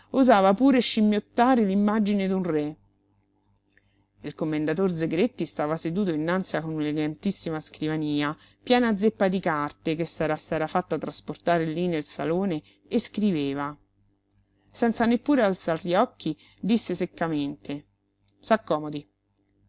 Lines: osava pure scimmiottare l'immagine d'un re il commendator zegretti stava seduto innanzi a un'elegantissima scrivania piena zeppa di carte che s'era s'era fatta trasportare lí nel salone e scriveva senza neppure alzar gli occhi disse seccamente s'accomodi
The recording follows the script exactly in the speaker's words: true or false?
true